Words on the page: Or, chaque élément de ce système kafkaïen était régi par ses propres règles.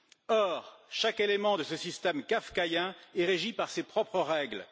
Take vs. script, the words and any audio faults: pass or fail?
fail